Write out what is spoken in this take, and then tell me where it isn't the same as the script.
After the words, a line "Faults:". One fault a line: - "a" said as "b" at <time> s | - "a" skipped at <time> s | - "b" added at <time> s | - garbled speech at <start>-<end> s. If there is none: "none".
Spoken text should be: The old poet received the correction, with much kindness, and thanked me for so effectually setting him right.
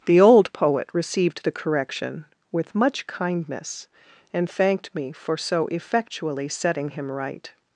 The old poet received the correction, with much kindness, and thanked me for so effectually setting him right.
Faults:
none